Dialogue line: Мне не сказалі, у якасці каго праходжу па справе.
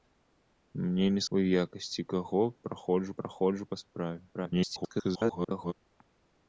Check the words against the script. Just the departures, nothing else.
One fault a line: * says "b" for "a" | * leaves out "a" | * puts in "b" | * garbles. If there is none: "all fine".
* leaves out "сказалі"
* puts in "праходжу"
* garbles